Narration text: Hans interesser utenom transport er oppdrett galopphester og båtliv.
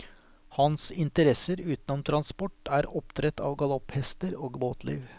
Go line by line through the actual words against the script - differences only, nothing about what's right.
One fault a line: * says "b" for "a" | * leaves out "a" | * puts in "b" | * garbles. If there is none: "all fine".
* puts in "av"